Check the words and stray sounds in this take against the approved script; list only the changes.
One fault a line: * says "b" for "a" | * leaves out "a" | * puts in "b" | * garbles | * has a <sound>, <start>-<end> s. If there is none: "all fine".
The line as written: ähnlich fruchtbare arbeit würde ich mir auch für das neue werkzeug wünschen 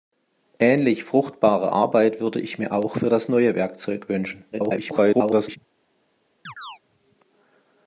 * garbles
* has a chirp, 6.5-6.8 s